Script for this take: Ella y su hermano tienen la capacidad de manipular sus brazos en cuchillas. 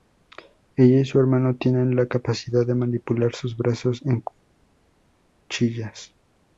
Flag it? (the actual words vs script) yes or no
no